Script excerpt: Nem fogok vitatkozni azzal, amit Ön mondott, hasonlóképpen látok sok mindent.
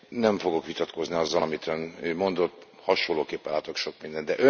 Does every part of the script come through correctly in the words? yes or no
yes